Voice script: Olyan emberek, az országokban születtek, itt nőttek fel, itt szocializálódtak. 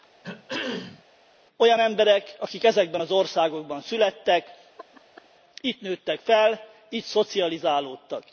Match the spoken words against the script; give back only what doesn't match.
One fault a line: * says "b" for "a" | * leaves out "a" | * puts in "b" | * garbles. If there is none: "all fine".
* puts in "akik ezekben"